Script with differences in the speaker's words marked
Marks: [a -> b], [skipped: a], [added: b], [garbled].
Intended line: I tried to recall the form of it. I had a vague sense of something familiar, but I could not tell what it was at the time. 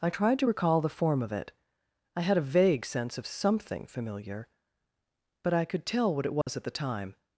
I tried to recall the form of it. I had a vague sense of something familiar, but I could [skipped: not] tell what it was at the time.